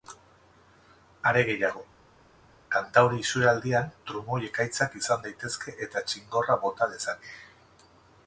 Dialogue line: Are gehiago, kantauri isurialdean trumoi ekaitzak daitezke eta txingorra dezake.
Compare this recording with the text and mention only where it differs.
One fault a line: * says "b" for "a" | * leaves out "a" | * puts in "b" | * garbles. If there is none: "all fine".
* puts in "izan"
* puts in "bota"